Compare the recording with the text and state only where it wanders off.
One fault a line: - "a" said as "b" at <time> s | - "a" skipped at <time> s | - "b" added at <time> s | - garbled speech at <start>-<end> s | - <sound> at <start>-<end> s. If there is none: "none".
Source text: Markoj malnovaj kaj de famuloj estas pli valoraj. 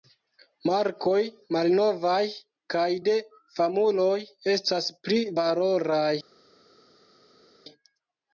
none